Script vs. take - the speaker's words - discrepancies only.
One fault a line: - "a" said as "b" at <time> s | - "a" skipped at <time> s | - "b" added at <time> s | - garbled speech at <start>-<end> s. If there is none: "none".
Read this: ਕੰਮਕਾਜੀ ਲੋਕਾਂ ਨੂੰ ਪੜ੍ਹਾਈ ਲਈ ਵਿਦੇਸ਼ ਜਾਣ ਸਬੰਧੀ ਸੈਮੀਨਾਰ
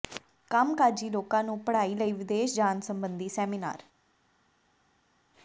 none